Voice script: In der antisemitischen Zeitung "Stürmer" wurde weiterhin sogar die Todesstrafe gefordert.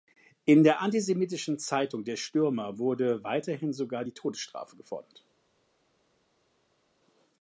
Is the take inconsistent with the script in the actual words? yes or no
yes